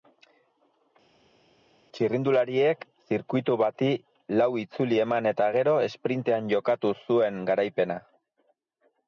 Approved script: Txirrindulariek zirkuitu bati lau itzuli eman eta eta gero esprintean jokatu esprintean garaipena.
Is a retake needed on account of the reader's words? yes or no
yes